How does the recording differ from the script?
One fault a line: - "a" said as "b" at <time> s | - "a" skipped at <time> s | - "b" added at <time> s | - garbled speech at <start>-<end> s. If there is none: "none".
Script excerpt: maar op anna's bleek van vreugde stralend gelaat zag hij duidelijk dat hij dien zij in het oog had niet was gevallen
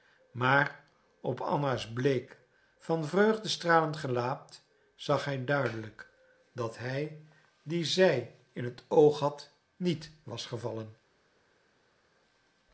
none